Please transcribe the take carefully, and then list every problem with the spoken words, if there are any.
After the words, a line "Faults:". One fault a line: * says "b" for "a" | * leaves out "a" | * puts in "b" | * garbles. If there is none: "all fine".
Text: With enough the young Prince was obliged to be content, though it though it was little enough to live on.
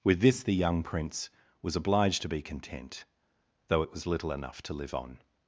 With this the young Prince was obliged to be content, though it was little enough to live on.
Faults:
* says "this" for "enough"
* leaves out "though it"